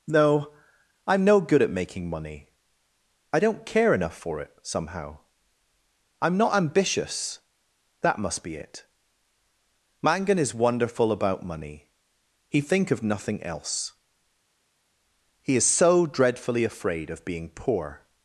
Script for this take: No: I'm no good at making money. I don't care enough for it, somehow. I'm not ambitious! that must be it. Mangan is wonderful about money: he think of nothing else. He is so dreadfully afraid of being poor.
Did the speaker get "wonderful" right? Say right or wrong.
right